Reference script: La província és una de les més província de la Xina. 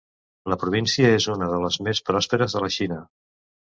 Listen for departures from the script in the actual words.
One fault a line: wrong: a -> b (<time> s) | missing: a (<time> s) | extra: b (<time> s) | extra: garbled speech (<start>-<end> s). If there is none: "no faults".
wrong: província -> pròsperes (2.1 s)